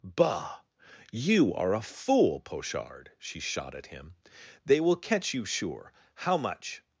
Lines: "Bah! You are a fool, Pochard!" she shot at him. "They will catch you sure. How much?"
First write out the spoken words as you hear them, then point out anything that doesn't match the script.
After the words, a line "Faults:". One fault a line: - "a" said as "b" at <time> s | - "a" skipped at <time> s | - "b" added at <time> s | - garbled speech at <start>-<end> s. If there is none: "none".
"Bah! You are a fool, Pochard!" she shot at him. "They will catch you sure. How much?"
Faults:
none